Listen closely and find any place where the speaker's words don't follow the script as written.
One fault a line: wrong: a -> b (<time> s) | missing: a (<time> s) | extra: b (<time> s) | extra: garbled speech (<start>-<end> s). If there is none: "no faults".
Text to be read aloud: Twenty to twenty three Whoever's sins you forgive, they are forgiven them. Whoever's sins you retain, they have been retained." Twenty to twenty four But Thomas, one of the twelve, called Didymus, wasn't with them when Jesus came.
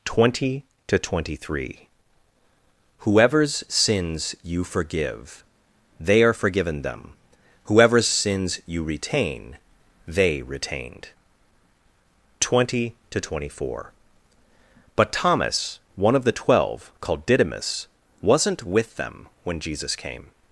missing: have been (10.4 s)